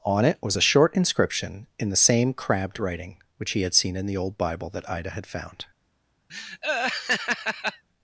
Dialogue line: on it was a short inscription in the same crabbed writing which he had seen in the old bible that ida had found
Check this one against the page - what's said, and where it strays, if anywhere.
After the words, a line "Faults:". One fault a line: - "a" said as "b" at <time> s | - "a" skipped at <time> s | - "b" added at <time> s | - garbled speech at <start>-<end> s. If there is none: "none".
on it was a short inscription in the same crabbed writing which he had seen in the old bible that ida had found
Faults:
none